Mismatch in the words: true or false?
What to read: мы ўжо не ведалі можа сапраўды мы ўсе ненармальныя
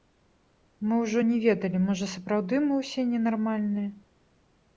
false